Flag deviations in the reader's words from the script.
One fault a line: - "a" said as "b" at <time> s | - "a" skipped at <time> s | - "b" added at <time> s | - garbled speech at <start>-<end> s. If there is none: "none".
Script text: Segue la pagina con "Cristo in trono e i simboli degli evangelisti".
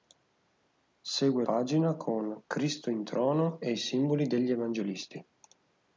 - "la" skipped at 1.4 s